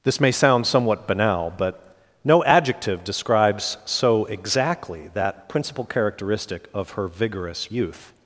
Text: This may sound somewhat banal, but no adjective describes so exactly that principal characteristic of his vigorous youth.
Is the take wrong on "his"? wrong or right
wrong